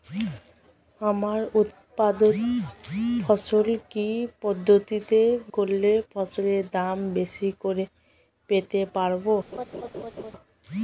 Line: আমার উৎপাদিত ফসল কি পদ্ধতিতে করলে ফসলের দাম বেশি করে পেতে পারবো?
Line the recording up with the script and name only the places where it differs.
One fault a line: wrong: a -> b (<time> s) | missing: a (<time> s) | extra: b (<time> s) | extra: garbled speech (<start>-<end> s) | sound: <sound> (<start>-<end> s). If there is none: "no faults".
sound: laugh (9.5-10.3 s)